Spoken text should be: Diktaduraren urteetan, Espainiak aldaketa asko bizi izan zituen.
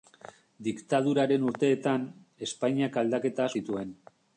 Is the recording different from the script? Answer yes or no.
yes